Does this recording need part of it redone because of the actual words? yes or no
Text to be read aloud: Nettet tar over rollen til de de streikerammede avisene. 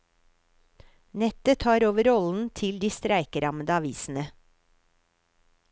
yes